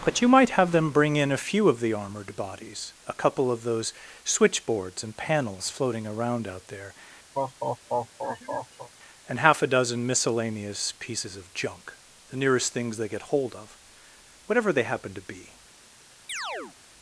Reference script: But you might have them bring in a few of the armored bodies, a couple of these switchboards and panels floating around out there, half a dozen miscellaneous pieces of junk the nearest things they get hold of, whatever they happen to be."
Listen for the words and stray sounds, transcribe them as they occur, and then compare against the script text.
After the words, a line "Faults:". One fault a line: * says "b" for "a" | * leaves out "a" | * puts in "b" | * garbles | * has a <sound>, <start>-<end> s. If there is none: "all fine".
But you might have them bring in a few of the armored bodies, a couple of those switchboards and panels floating around out there, and half a dozen miscellaneous pieces of junk the nearest things they get hold of, whatever they happen to be."
Faults:
* says "those" for "these"
* has a laugh, 7.3-8.9 s
* puts in "and"
* has a chirp, 16.3-16.8 s